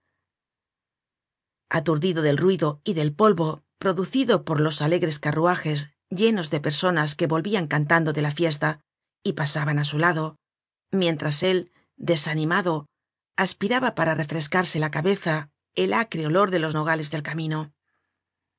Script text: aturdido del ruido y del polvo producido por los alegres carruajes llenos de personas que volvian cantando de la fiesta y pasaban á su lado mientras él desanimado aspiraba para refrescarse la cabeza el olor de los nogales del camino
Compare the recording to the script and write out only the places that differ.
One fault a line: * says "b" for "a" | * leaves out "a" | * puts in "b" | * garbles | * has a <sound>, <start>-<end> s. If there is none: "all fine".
* puts in "acre"